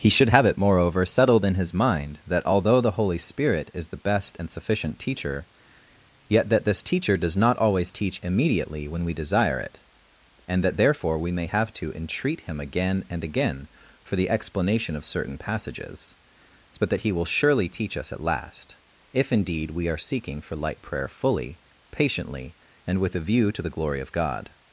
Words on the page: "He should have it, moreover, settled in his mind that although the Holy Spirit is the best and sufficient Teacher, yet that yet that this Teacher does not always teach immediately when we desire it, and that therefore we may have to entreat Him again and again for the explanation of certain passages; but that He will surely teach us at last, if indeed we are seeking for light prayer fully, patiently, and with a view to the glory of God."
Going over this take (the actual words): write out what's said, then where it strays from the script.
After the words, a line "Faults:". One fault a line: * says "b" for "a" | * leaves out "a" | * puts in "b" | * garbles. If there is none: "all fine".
"He should have it, moreover, settled in his mind that although the Holy Spirit is the best and sufficient Teacher, yet that this Teacher does not always teach immediately when we desire it, and that therefore we may have to entreat Him again and again for the explanation of certain passages; but that He will surely teach us at last, if indeed we are seeking for light prayer fully, patiently, and with a view to the glory of God."
Faults:
* leaves out "yet that"